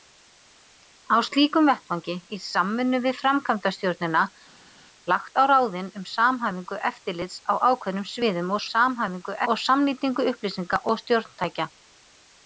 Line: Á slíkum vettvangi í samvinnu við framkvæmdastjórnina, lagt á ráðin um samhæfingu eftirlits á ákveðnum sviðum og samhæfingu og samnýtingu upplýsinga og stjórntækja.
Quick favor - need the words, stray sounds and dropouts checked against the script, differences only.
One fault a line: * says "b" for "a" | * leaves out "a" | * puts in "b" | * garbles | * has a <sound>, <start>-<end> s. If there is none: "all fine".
all fine